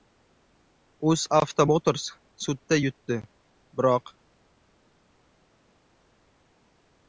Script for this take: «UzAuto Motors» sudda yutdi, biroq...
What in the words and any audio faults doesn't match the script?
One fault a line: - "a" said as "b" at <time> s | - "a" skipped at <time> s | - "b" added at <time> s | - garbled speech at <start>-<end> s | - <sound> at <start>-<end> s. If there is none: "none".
none